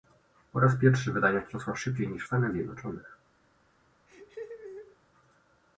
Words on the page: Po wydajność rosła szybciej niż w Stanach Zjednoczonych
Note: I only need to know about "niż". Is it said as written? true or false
true